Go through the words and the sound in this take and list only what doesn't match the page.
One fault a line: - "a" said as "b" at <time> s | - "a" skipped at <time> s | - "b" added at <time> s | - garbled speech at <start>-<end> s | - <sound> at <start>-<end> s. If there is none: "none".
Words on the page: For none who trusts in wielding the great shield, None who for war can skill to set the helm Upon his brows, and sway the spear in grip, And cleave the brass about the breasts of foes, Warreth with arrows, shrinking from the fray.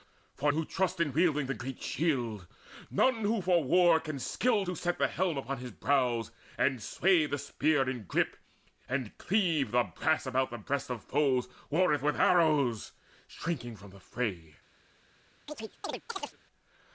- "none" skipped at 0.5 s
- chirp at 15.5-16.4 s